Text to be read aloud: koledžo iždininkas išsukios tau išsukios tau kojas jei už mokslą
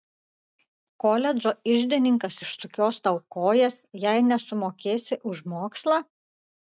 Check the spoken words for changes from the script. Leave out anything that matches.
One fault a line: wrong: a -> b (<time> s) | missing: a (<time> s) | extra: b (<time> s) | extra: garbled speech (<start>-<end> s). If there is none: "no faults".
missing: išsukios tau (3.2 s)
extra: nesumokėsi (4.3 s)